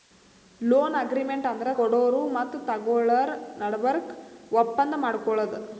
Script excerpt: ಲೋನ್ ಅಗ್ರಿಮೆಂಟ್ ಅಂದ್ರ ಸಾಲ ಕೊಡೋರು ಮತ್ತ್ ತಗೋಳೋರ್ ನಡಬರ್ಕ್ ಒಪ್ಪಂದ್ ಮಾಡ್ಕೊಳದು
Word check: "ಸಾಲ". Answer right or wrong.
wrong